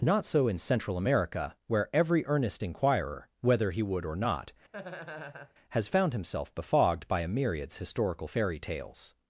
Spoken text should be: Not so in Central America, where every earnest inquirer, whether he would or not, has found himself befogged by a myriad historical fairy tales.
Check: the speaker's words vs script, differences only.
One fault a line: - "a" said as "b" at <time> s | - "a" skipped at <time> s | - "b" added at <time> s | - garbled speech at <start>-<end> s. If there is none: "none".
- "myriad" said as "myriads" at 7.3 s